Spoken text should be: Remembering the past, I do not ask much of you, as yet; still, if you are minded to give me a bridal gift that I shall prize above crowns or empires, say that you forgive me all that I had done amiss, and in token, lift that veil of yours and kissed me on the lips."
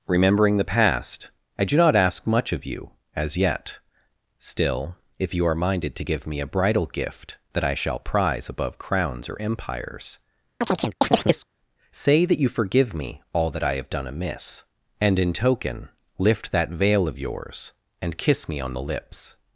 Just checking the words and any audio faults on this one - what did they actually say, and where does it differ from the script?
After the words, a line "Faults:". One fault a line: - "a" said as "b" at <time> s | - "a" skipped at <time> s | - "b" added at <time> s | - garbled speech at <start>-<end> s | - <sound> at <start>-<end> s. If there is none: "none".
Remembering the past, I do not ask much of you, as yet; still, if you are minded to give me a bridal gift that I shall prize above crowns or empires, say that you forgive me all that I have done amiss, and in token, lift that veil of yours and kiss me on the lips."
Faults:
- chirp at 10.6-11.5 s
- "had" said as "have" at 13.8 s
- "kissed" said as "kiss" at 18.2 s